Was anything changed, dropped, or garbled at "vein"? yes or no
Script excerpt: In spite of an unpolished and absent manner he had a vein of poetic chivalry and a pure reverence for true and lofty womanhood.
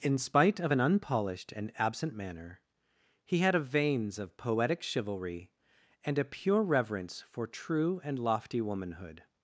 yes